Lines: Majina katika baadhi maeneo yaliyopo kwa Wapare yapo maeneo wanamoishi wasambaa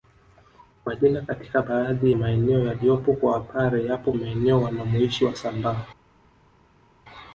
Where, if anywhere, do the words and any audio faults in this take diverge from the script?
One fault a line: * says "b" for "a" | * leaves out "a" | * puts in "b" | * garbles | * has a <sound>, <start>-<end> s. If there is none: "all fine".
all fine